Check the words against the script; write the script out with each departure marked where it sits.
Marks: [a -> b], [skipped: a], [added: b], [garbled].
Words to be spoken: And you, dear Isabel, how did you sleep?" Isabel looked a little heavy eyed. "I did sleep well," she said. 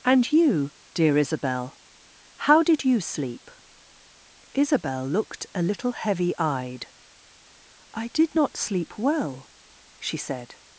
And you, dear Isabel, how did you sleep?" Isabel looked a little heavy eyed. "I did [added: not] sleep well," she said.